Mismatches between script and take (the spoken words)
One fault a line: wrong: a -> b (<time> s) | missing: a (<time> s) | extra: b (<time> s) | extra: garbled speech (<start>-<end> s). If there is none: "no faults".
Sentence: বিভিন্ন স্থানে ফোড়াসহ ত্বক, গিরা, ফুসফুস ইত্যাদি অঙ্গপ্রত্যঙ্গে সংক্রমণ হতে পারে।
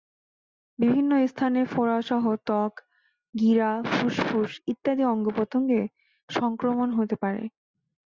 no faults